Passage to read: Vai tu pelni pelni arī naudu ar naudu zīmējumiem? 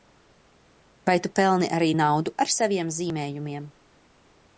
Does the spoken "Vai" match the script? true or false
true